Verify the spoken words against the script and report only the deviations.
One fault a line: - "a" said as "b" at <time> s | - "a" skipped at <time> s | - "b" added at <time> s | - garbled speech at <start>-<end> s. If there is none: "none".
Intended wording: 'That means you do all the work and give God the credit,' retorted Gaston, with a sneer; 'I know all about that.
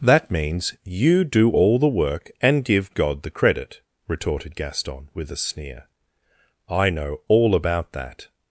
none